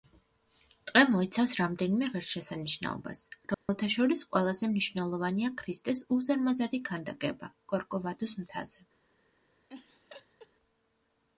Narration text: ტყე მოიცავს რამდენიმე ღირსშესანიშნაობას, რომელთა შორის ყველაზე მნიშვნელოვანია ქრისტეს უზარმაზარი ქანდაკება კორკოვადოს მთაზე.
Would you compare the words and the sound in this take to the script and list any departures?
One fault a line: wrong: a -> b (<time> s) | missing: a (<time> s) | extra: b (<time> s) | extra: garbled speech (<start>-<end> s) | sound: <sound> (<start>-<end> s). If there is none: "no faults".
sound: dropout (3.5-3.7 s)
sound: laugh (9.7-10.5 s)